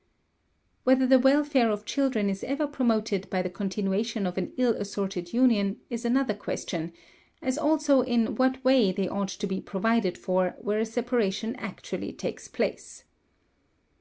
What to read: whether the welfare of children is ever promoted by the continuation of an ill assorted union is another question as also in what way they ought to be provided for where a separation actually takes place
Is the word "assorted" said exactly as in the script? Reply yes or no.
yes